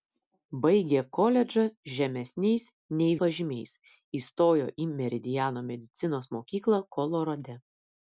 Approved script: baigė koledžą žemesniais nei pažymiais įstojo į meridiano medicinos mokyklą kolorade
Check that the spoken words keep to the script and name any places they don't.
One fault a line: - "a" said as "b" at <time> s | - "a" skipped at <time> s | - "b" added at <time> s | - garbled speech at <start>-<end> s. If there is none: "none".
none